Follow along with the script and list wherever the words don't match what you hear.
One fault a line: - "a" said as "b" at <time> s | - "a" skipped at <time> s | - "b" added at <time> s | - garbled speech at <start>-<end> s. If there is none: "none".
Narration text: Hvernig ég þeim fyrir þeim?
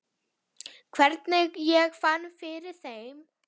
- "þeim" said as "fann" at 2.0 s